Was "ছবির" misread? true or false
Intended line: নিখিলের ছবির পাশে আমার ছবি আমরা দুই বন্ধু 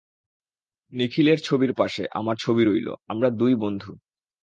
false